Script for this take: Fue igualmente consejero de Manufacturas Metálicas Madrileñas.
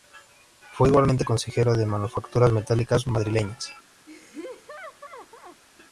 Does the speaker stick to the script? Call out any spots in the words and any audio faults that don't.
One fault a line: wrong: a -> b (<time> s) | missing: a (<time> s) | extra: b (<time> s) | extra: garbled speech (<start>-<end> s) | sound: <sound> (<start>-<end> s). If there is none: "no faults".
sound: laugh (4.1-5.6 s)